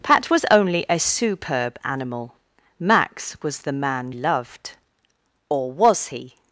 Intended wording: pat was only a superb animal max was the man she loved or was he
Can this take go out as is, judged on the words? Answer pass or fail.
fail